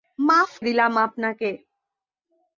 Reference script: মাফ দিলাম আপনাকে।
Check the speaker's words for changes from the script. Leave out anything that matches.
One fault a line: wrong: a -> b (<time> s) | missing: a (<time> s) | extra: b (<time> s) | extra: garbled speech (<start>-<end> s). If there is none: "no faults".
no faults